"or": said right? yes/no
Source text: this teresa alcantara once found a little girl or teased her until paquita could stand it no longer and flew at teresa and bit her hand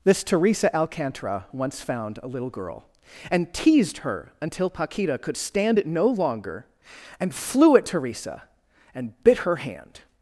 no